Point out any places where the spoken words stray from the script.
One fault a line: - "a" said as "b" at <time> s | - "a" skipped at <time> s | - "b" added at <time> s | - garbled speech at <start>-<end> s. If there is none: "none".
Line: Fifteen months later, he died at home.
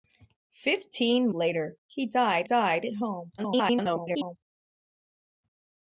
- "months" skipped at 1.3 s
- "died" added at 2.4 s
- garbled speech at 3.4-4.4 s